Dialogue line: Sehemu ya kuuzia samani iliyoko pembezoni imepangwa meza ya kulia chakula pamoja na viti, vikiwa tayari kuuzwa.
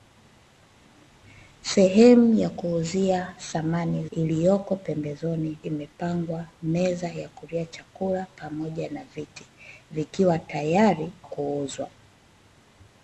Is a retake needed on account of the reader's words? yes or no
no